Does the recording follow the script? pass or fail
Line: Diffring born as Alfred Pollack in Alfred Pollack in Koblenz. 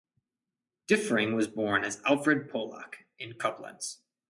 fail